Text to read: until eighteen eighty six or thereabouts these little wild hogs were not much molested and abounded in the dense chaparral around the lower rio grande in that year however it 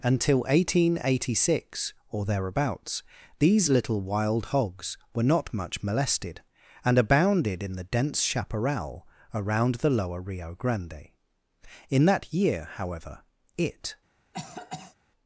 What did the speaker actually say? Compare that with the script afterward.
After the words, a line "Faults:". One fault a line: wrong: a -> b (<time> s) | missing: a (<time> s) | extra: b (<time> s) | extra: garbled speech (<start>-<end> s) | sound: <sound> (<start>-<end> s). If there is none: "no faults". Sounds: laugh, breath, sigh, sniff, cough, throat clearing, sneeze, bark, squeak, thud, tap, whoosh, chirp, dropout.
until eighteen eighty six or thereabouts these little wild hogs were not much molested and abounded in the dense chaparral around the lower rio grande in that year however it
Faults:
sound: cough (14.3-15.0 s)